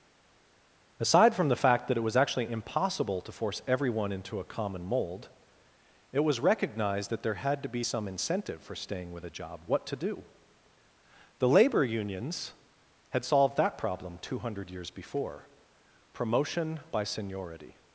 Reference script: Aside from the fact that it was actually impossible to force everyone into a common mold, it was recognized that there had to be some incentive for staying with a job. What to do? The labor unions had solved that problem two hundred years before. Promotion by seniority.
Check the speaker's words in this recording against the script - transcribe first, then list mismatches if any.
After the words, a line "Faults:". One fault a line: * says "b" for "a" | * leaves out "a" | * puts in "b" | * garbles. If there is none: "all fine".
Aside from the fact that it was actually impossible to force everyone into a common mold, it was recognized that there had to be some incentive for staying with a job. What to do? The labor unions had solved that problem two hundred years before. Promotion by seniority.
Faults:
all fine